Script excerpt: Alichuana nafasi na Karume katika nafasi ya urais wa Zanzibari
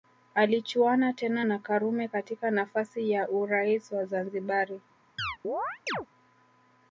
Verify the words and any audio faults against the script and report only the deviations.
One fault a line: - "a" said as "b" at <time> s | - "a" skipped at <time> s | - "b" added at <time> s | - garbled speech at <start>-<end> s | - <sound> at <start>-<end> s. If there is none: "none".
- "nafasi" said as "tena" at 1.1 s
- chirp at 5.2-6.1 s